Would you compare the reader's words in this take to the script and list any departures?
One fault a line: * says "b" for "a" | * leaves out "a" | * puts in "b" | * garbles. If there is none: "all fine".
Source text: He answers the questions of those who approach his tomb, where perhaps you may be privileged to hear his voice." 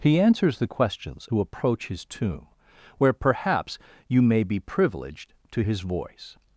* leaves out "of those"
* leaves out "hear"